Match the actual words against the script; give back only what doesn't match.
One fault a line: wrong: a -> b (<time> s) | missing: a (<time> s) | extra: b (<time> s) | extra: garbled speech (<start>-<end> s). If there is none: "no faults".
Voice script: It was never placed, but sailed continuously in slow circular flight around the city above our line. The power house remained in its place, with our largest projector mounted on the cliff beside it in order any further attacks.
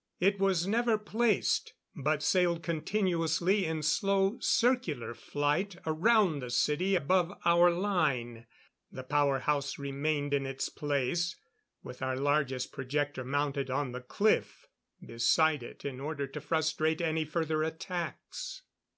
extra: to frustrate (16.3 s)